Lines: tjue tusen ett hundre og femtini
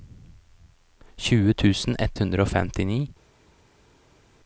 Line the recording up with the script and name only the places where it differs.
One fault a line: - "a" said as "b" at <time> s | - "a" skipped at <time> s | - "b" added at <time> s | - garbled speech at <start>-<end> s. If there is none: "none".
none